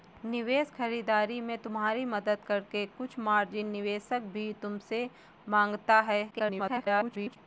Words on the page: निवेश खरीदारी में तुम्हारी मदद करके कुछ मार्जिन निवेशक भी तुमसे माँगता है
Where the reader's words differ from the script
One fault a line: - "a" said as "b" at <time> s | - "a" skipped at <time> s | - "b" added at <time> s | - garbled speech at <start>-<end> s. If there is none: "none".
- garbled speech at 6.3-7.4 s